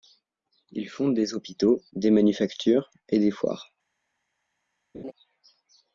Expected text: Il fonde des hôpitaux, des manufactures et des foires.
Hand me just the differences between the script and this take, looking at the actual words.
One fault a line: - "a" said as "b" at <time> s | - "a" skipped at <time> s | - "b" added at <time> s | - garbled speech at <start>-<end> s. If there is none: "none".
none